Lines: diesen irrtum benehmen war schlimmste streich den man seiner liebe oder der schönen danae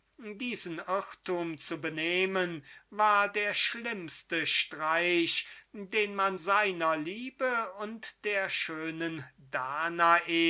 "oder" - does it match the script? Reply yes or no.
no